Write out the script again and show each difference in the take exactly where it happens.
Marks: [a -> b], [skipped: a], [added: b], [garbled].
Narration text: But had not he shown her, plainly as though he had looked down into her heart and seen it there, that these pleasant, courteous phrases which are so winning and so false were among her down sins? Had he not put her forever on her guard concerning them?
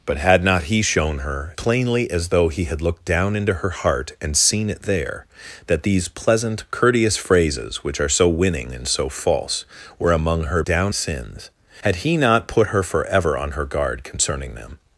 But had not he shown her, plainly as though he had looked down into her heart and seen it there, that these pleasant, courteous phrases which are so winning and so false were among her down sins? Had he not put her forever on her guard concerning them?